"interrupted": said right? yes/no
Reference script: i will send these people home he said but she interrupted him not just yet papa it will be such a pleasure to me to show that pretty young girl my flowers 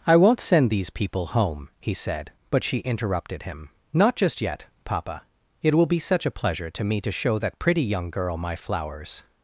yes